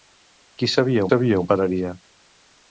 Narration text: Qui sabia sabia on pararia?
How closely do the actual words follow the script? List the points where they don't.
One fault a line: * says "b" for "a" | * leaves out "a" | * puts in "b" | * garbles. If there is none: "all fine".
all fine